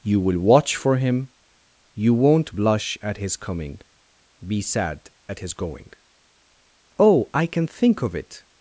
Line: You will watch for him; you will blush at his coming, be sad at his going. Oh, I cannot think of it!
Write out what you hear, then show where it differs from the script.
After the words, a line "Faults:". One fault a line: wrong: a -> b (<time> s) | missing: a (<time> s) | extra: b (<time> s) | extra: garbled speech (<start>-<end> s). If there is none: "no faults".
You will watch for him; you won't blush at his coming, be sad at his going. Oh, I can think of it!
Faults:
wrong: will -> won't (2.1 s)
wrong: cannot -> can (7.5 s)